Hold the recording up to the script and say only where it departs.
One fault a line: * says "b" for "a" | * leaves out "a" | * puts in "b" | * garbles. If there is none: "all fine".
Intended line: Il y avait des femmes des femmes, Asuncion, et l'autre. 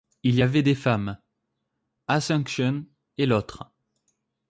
* leaves out "des femmes"